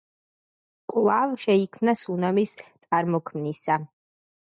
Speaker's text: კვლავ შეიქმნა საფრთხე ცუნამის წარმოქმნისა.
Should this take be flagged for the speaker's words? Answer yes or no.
yes